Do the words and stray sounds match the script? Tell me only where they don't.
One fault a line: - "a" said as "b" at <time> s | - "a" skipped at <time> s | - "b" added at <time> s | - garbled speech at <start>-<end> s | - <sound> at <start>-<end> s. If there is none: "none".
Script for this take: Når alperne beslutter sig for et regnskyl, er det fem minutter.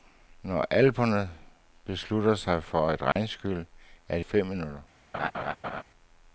- dropout at 3.1-3.2 s
- laugh at 5.1-5.8 s